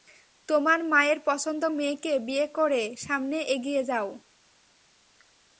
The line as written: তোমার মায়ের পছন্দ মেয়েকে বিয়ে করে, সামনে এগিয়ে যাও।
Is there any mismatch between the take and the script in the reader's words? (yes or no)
no